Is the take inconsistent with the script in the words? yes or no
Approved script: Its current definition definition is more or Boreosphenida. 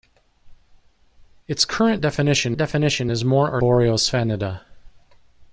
no